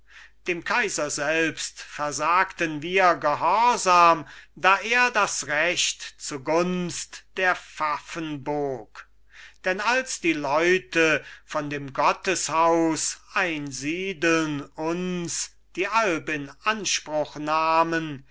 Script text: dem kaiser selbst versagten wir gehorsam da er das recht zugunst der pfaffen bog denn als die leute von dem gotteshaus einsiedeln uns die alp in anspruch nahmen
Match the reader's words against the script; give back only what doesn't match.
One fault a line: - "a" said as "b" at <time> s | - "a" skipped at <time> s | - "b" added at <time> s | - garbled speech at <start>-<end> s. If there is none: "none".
none